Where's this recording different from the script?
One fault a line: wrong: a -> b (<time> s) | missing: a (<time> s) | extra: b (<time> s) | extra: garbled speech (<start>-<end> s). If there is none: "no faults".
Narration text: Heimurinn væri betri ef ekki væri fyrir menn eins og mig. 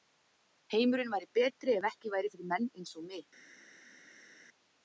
no faults